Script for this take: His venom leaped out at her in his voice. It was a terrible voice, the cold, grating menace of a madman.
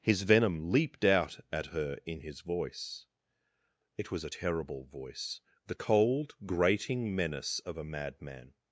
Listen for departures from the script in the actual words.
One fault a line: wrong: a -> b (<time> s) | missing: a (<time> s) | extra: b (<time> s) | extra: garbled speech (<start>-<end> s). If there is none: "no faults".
no faults